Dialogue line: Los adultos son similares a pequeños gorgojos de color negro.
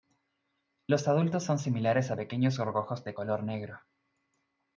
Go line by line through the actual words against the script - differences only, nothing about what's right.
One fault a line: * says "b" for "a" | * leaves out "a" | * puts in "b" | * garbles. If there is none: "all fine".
all fine